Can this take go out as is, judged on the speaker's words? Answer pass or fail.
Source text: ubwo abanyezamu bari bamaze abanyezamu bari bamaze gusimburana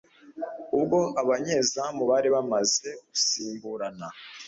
fail